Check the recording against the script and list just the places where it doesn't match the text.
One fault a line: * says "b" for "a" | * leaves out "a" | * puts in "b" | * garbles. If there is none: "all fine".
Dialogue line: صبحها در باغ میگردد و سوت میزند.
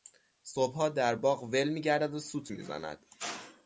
* puts in "ول"